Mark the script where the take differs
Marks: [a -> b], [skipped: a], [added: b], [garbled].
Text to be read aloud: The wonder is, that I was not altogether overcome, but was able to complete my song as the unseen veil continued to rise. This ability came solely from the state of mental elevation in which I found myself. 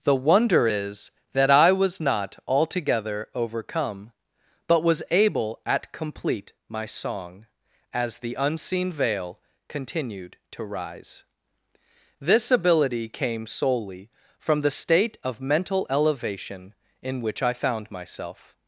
The wonder is, that I was not altogether overcome, but was able [to -> at] complete my song as the unseen veil continued to rise. This ability came solely from the state of mental elevation in which I found myself.